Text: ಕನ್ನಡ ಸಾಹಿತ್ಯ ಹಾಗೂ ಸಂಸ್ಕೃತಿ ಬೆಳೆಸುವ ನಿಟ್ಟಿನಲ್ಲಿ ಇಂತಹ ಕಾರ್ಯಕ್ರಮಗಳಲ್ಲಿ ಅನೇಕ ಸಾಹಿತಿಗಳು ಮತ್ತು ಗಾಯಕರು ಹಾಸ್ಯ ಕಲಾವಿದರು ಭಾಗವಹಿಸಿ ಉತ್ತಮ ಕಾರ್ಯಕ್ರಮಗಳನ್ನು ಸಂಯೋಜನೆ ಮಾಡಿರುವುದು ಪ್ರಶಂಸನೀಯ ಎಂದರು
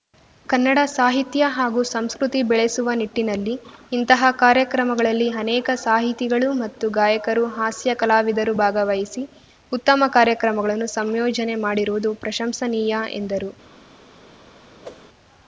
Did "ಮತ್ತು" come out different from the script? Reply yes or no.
no